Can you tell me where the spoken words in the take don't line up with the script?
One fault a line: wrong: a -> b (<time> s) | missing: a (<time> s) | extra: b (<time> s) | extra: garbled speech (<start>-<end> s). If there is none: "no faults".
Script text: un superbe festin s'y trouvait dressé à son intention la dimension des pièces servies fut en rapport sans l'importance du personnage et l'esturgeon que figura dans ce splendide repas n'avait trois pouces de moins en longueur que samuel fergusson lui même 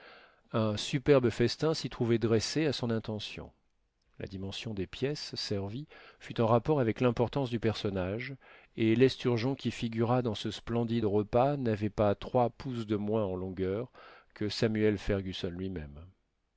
wrong: sans -> avec (6.8 s)
wrong: que -> qui (9.6 s)
extra: pas (11.9 s)